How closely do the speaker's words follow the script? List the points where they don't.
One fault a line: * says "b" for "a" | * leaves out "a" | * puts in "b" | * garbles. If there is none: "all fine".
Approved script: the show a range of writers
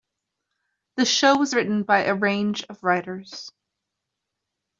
* puts in "was written by"